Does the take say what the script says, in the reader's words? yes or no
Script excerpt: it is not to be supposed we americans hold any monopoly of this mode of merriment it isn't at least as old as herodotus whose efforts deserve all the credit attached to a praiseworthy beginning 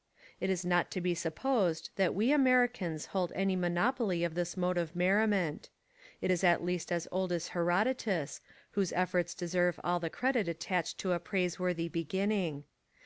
no